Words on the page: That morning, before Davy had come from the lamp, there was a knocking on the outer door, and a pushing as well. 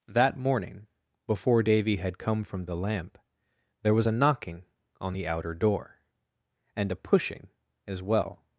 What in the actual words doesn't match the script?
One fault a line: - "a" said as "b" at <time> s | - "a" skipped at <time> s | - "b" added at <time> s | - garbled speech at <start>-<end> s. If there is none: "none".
none